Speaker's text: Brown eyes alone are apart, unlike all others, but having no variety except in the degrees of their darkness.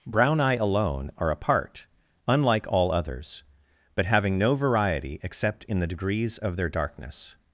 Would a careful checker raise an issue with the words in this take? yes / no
yes